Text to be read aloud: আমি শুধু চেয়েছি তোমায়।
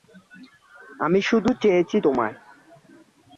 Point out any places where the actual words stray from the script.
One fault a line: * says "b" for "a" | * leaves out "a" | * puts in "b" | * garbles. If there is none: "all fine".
all fine